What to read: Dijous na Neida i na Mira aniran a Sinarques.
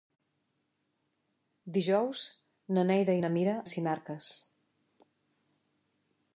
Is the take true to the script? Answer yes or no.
no